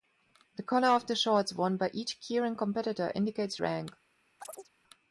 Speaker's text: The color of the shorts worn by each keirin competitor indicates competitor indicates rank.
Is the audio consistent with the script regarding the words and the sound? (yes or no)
no